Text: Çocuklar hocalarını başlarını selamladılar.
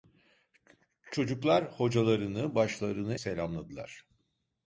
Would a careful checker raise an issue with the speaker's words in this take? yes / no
no